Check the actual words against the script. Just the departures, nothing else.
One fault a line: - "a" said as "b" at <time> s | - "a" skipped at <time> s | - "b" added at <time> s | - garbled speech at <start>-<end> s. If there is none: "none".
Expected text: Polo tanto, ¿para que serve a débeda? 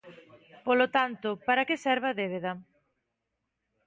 none